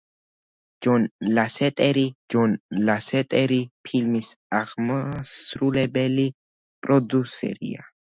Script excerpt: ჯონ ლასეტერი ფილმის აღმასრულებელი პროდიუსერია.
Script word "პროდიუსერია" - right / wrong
right